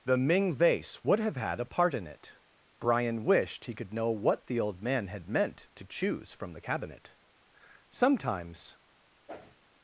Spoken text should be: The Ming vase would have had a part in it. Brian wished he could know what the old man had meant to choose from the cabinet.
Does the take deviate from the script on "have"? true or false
false